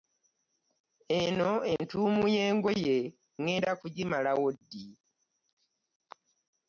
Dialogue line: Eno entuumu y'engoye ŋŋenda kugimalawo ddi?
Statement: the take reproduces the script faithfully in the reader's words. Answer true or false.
true